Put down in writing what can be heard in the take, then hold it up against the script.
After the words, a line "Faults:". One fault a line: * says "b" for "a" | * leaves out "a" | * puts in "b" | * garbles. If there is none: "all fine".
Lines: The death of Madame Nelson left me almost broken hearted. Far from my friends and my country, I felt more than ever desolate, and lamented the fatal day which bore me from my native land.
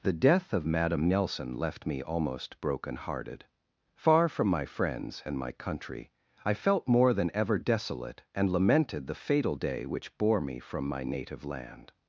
The death of Madame Nelson left me almost broken hearted. Far from my friends and my country, I felt more than ever desolate, and lamented the fatal day which bore me from my native land.
Faults:
all fine